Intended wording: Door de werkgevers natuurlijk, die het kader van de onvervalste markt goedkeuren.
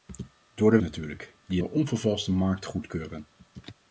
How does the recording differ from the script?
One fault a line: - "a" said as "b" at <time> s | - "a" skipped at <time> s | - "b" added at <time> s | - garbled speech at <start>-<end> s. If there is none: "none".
- "werkgevers" skipped at 0.8 s
- "het kader van" skipped at 1.6 s